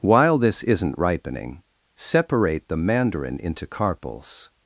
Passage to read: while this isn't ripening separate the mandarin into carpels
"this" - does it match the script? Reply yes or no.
yes